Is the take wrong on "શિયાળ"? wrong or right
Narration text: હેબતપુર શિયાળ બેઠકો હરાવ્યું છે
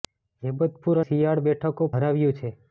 right